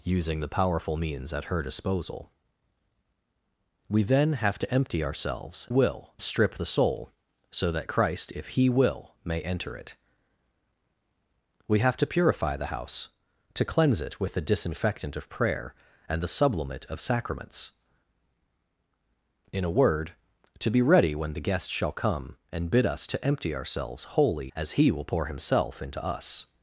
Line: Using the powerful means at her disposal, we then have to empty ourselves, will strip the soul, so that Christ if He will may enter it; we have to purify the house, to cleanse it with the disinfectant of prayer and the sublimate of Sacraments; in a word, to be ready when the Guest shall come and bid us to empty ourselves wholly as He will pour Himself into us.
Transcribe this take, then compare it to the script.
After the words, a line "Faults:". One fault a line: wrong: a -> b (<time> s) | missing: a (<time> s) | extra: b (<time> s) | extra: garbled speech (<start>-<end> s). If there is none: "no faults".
Using the powerful means at her disposal, we then have to empty ourselves, will strip the soul, so that Christ if He will may enter it; we have to purify the house, to cleanse it with the disinfectant of prayer and the sublimate of Sacraments; in a word, to be ready when the Guest shall come and bid us to empty ourselves wholly as He will pour Himself into us.
Faults:
no faults